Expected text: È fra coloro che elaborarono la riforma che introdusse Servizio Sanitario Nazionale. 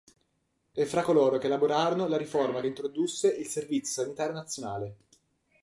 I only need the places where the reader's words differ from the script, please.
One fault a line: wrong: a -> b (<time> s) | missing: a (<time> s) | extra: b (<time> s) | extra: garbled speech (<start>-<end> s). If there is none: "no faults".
extra: il (3.3 s)